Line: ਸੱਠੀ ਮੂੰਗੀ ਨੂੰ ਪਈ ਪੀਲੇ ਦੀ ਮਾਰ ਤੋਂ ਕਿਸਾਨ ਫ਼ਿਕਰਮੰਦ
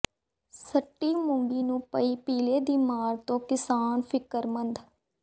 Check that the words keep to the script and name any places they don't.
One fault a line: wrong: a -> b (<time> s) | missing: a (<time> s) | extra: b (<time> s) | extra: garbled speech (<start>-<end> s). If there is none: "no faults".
no faults